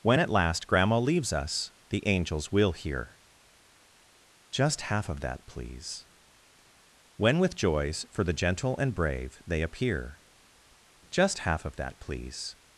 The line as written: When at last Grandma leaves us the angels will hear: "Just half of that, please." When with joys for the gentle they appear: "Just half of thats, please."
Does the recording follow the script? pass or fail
fail